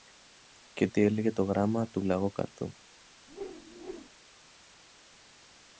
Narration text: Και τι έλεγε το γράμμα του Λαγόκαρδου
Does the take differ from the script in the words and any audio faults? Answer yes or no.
yes